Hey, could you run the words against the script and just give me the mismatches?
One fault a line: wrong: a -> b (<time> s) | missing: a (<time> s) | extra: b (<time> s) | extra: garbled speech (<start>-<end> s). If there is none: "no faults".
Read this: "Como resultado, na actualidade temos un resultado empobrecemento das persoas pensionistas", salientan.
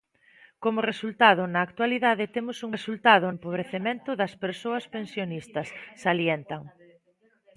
no faults